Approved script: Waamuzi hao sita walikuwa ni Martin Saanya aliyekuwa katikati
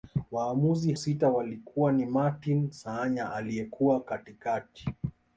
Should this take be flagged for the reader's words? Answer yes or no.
yes